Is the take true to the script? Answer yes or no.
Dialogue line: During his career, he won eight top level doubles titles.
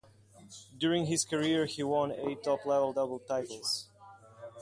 yes